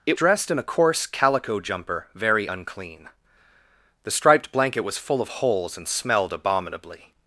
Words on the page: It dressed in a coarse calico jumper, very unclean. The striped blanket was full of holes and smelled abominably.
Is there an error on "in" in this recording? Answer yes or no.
no